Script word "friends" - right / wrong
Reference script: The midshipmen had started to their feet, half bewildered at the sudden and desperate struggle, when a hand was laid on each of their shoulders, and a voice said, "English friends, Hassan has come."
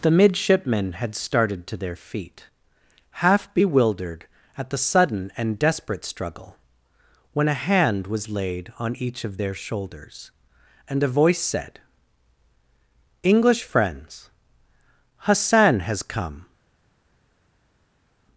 right